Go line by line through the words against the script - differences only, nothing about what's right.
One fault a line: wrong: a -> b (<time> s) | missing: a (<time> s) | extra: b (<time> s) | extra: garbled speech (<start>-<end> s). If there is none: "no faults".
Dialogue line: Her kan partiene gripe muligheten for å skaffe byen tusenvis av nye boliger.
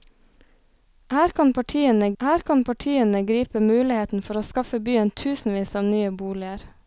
extra: her kan partiene (2.2 s)